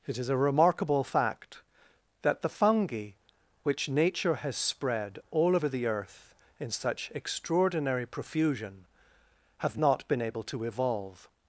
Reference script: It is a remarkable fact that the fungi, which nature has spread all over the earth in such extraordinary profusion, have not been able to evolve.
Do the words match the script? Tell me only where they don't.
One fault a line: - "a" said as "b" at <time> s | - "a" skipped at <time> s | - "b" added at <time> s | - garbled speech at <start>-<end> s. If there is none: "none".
none